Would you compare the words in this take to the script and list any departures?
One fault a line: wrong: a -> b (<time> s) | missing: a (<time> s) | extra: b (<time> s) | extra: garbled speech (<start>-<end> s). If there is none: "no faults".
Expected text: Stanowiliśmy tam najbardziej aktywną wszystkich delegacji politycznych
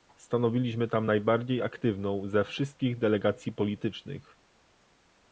extra: ze (2.3 s)